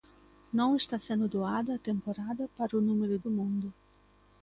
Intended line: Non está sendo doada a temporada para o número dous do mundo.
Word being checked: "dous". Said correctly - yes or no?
no